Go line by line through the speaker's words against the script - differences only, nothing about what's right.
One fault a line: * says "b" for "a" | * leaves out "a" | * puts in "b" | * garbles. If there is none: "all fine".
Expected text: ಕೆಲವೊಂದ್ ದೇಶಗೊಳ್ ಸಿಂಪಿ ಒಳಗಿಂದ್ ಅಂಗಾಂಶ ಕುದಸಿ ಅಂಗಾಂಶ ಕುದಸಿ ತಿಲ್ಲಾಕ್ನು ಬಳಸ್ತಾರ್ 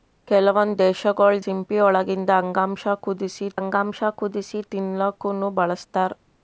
all fine